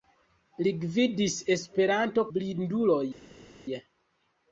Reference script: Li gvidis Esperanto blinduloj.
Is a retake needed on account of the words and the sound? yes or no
no